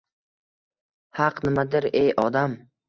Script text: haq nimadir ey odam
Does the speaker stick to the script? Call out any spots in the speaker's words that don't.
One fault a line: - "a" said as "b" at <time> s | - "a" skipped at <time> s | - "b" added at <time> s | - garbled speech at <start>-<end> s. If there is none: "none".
none